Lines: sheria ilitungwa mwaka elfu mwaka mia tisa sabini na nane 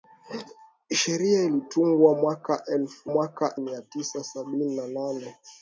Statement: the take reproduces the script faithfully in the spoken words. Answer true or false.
true